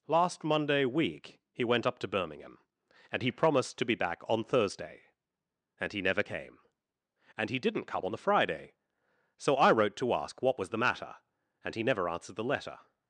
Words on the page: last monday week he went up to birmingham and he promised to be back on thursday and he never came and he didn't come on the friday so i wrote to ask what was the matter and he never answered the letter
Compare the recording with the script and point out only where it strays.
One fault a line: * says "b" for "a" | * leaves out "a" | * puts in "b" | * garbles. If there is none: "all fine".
all fine